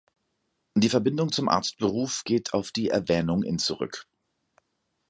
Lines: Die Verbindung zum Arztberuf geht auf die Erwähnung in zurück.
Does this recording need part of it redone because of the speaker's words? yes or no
no